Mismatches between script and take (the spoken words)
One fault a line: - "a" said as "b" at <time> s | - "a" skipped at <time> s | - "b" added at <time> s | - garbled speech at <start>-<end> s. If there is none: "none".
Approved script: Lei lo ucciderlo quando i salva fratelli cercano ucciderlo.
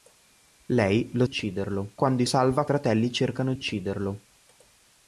none